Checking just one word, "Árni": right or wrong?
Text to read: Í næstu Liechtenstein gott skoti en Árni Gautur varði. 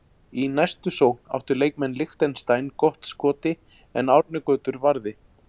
right